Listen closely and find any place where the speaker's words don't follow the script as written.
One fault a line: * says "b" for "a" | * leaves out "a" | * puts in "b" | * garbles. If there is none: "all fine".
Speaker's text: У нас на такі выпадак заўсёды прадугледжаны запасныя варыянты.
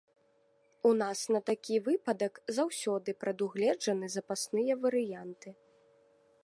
all fine